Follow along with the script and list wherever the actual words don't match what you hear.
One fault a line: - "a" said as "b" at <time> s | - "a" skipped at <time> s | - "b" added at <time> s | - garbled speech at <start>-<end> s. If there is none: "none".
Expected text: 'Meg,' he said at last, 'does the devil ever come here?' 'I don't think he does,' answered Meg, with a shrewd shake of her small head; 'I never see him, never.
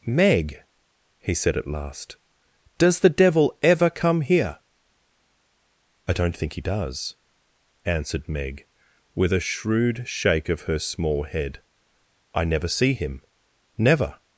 none